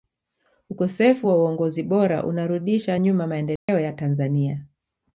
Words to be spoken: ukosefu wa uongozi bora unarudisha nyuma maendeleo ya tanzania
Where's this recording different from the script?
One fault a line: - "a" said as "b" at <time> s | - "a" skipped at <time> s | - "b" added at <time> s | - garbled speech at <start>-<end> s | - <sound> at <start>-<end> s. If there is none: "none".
- dropout at 3.6-3.7 s